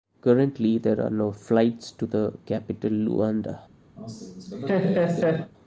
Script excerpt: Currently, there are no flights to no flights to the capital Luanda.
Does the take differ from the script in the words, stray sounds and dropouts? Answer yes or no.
yes